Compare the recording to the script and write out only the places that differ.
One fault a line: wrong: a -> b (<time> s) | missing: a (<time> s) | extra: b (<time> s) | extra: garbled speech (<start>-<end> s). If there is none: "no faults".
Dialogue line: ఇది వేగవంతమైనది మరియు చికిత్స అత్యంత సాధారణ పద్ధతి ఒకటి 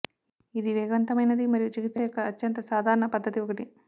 extra: యొక్క (2.0 s)